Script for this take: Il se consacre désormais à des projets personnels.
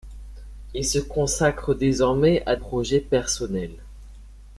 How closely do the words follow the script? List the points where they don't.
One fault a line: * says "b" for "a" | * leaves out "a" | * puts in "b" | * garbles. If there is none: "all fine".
* leaves out "des"